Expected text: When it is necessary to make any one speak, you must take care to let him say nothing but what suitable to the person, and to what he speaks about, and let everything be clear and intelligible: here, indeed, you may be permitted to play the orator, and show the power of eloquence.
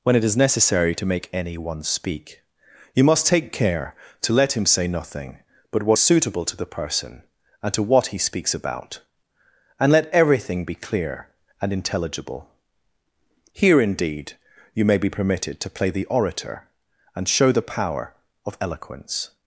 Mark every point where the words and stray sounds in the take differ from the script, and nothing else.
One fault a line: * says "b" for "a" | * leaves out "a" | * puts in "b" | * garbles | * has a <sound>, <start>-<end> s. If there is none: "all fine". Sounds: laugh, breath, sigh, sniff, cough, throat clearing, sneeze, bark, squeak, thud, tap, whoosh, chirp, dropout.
all fine